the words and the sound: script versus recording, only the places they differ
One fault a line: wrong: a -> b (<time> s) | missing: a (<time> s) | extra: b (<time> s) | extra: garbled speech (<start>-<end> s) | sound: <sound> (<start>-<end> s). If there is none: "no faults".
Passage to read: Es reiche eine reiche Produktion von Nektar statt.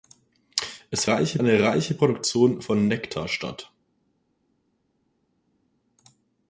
no faults